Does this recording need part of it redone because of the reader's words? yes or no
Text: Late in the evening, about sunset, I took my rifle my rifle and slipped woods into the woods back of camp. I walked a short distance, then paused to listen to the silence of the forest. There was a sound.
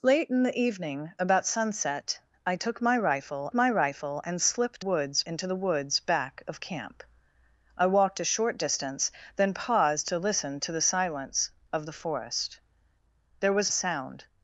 no